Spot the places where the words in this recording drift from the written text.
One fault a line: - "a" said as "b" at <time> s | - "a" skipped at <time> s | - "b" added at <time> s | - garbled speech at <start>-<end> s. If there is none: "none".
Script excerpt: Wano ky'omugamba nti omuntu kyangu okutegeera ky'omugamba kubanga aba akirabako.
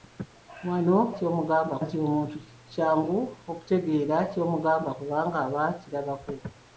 none